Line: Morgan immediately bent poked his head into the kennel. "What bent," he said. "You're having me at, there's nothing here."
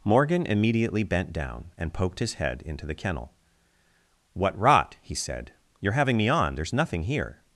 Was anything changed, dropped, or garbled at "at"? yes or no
yes